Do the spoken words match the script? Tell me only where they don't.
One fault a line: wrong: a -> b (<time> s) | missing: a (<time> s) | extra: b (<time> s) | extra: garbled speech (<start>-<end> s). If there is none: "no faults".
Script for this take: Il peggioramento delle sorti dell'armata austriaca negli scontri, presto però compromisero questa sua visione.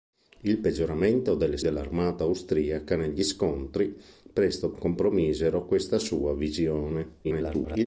missing: sorti (1.6 s)
missing: però (4.7 s)
extra: garbled speech (7.2-7.9 s)